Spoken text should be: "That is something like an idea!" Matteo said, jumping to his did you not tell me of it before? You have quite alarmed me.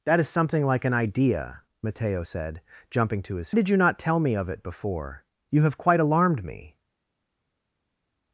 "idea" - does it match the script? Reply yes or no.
yes